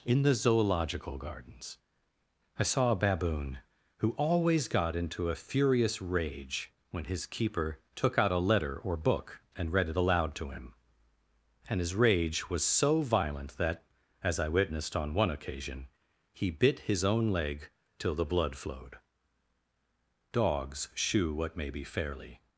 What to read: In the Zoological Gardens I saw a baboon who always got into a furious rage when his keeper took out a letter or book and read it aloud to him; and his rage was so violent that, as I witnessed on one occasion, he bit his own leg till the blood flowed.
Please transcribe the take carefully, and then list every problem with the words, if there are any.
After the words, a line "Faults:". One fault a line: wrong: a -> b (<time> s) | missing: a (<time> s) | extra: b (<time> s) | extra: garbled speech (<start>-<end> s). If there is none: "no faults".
In the Zoological Gardens I saw a baboon who always got into a furious rage when his keeper took out a letter or book and read it aloud to him; and his rage was so violent that, as I witnessed on one occasion, he bit his own leg till the blood flowed. Dogs shew what may be fairly
Faults:
extra: Dogs shew what may be fairly (20.3 s)